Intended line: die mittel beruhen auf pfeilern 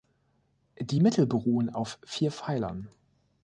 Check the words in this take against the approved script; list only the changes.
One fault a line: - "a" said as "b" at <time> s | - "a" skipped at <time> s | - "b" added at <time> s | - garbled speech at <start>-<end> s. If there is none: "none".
- "vier" added at 2.1 s